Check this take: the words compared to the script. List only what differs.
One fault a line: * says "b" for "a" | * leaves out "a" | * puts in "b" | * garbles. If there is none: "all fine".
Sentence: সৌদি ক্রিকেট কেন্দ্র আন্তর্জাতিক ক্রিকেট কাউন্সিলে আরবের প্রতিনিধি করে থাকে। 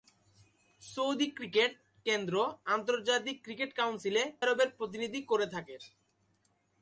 all fine